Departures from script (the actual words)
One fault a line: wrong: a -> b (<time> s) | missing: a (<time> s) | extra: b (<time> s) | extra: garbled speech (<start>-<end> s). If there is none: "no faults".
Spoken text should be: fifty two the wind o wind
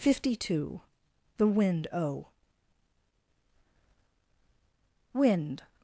no faults